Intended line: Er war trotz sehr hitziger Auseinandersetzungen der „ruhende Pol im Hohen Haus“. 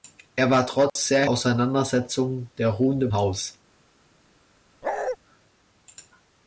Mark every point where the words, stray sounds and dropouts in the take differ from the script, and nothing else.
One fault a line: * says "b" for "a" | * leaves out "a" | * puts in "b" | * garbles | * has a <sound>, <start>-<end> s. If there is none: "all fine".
* has a dropout, 0.9-1.0 s
* leaves out "hitziger"
* leaves out "Pol im Hohen"
* has a bark, 4.8-5.2 s